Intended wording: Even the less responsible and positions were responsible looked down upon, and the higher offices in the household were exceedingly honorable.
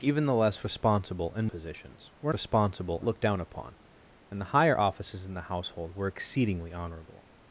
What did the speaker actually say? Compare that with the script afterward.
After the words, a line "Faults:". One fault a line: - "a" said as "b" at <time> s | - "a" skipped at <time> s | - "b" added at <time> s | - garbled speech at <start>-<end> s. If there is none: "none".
Even the less responsible and positions were responsible looked down upon, and the higher offices in the household were exceedingly honorable.
Faults:
none